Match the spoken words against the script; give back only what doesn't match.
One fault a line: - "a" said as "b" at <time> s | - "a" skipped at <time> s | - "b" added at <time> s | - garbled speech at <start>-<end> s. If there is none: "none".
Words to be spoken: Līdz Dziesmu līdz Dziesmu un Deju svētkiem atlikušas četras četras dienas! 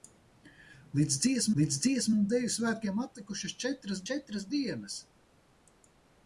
none